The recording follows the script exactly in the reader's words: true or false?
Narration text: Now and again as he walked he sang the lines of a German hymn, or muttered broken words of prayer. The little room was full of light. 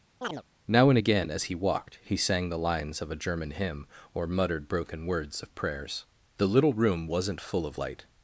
false